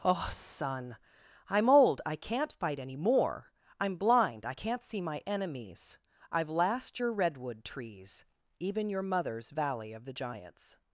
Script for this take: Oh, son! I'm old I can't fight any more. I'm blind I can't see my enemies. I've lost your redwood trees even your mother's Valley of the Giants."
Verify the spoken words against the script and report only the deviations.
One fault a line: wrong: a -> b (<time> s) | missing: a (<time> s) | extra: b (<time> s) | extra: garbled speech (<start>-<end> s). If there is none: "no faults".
wrong: lost -> last (6.5 s)